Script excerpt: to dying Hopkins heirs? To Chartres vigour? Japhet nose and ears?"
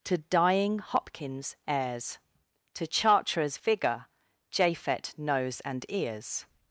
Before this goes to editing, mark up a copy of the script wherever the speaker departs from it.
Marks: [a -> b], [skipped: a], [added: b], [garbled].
to dying Hopkins heirs? To Chartres vigour? Japhet nose and ears?"